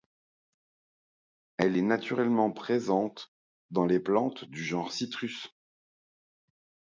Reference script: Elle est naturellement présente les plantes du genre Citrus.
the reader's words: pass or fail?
fail